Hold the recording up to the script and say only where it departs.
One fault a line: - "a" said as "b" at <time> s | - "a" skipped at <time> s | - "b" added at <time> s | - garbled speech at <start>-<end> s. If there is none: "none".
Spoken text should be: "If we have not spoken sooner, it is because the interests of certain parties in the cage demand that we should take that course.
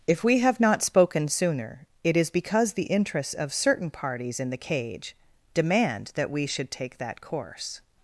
none